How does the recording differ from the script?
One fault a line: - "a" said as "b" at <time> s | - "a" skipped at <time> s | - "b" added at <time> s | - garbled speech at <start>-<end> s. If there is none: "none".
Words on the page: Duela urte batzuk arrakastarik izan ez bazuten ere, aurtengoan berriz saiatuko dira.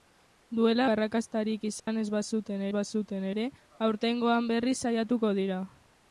- "urte batzuk" skipped at 0.8 s
- "bazuten" added at 2.8 s